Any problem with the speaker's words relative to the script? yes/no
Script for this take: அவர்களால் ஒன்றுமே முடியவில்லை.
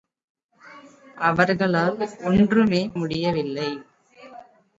no